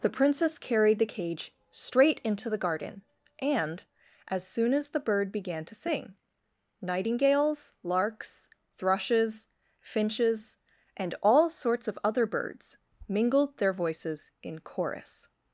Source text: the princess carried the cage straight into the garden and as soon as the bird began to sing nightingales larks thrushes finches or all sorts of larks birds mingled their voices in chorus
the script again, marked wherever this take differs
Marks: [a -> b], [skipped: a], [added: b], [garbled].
the princess carried the cage straight into the garden and as soon as the bird began to sing nightingales larks thrushes finches [or -> and] all sorts of [larks -> other] birds mingled their voices in chorus